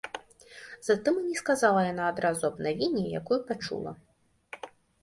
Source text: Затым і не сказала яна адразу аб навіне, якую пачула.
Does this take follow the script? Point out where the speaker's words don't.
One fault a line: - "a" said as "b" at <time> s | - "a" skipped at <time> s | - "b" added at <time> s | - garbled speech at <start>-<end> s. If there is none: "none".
none